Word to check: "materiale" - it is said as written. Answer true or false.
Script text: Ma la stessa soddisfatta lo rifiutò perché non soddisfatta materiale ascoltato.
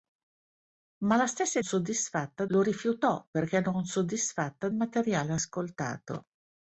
true